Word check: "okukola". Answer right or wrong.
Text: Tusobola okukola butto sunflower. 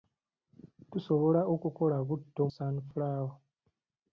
right